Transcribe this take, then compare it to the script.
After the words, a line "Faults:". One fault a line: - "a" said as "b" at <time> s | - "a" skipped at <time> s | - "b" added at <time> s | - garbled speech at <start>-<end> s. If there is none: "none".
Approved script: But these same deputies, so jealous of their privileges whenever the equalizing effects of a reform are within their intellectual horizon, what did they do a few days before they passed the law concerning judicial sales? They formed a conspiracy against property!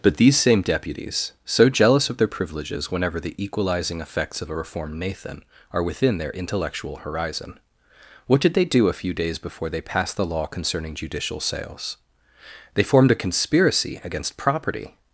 But these same deputies, so jealous of their privileges whenever the equalizing effects of a reformed nathan are within their intellectual horizon, what did they do a few days before they passed the law concerning judicial sales? They formed a conspiracy against property!
Faults:
- "reform" said as "reformed nathan" at 4.5 s